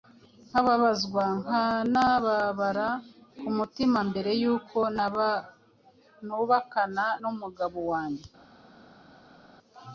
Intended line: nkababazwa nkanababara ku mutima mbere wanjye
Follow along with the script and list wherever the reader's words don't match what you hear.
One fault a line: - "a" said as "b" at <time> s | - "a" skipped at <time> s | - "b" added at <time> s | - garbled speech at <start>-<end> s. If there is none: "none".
- "y'uko nubakana n'umugabo" added at 4.4 s